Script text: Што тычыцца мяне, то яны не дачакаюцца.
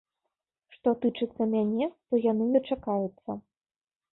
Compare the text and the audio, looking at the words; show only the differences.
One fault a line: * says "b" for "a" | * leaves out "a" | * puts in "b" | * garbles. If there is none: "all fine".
* leaves out "не"